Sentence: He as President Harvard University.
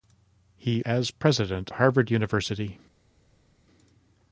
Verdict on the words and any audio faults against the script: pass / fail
pass